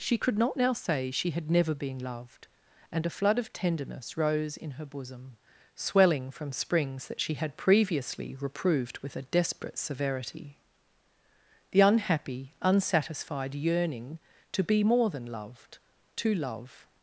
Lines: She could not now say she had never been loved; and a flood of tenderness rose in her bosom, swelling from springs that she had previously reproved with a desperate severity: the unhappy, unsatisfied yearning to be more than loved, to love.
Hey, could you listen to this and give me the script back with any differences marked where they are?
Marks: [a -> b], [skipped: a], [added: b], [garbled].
She could not now say she had never been loved; and a flood of tenderness rose in her bosom, swelling from springs that she had previously reproved with a desperate severity: the unhappy, unsatisfied yearning to be more than loved, to love.